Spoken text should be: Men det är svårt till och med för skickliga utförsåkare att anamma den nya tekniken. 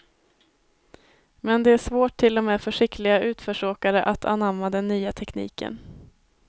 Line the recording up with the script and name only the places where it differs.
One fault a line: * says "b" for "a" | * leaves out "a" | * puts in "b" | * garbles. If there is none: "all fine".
all fine